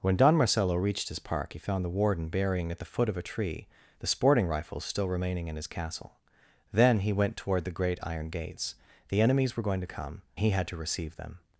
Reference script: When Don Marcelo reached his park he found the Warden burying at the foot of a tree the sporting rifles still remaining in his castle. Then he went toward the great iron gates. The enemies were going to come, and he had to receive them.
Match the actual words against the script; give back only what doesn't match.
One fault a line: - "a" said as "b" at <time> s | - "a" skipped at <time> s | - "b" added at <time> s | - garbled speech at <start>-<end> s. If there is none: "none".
- "and" skipped at 10.2 s